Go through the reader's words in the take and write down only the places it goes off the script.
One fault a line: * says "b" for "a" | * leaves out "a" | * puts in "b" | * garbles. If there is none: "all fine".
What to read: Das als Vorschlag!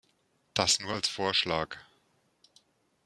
* puts in "nur"